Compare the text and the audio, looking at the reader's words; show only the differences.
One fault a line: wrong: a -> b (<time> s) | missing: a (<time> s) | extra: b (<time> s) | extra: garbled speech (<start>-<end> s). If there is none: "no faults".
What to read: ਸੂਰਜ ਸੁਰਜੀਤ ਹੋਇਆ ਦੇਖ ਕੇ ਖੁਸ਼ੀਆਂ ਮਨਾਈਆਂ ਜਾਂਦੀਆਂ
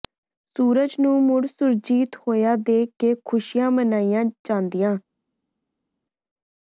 extra: ਨੂੰ ਮੁੜ (1.0 s)